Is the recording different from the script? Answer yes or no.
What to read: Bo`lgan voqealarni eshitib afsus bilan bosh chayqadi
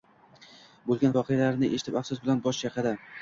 no